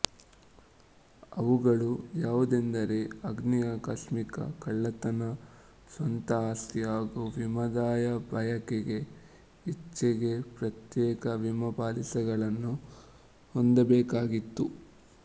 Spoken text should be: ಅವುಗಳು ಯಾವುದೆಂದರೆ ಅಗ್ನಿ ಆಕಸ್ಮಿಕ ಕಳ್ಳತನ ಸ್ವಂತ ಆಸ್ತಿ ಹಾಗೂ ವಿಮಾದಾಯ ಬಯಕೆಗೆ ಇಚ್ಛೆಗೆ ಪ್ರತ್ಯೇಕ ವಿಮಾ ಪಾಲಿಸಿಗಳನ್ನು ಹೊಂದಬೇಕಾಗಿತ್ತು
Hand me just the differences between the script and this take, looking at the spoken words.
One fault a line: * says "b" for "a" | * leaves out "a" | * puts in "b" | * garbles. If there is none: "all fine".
all fine